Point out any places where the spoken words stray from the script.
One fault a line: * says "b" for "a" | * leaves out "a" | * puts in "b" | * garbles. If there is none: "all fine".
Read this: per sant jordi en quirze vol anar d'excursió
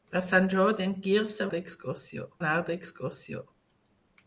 * says "d'excursió" for "vol"